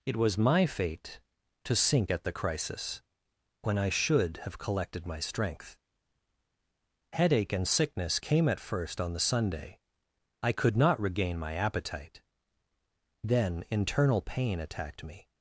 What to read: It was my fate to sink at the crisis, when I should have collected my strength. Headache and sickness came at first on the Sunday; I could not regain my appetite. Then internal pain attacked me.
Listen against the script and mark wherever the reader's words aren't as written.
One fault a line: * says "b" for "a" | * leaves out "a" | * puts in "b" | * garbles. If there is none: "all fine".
all fine